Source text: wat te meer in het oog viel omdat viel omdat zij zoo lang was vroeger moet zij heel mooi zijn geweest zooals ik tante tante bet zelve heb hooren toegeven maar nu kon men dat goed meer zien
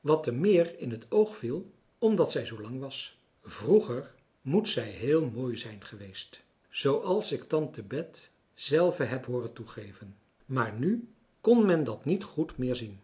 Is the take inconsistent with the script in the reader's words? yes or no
yes